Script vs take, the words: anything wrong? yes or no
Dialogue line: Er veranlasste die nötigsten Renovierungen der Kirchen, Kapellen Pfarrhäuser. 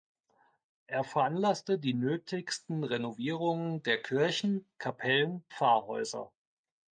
no